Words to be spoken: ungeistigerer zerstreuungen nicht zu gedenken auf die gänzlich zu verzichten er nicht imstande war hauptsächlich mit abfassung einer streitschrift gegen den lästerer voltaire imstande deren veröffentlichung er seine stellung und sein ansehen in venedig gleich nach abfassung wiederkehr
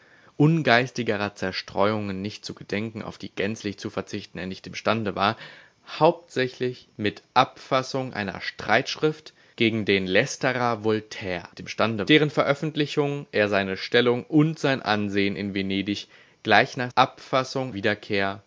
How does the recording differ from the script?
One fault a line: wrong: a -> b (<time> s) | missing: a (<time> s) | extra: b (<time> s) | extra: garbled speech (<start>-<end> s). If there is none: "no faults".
no faults